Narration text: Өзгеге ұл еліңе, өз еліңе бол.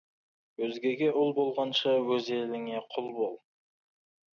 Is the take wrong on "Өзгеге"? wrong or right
right